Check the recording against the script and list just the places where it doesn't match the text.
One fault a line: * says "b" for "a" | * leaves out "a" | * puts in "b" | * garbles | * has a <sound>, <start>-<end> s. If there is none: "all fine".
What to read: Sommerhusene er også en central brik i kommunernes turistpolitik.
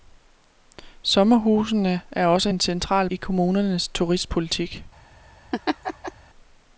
* leaves out "brik"
* has a laugh, 5.5-6.1 s